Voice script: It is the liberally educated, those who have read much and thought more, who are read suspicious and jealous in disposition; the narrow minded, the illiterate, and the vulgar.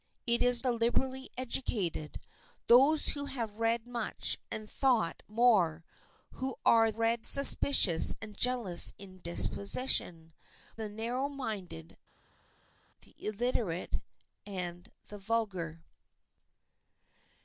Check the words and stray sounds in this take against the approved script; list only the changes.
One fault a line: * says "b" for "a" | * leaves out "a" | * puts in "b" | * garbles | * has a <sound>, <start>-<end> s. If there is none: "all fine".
all fine